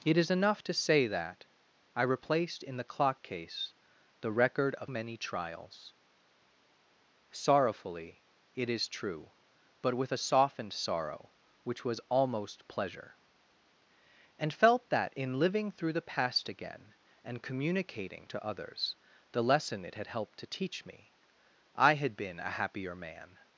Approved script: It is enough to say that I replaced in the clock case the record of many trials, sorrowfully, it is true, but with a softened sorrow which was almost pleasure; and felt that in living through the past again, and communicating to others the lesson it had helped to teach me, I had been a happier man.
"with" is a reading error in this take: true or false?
false